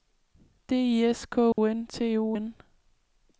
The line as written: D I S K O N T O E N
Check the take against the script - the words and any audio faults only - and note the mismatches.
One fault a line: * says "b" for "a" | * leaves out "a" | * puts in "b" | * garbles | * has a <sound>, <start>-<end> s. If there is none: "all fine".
* has a dropout, 1.5-1.6 s
* leaves out "E"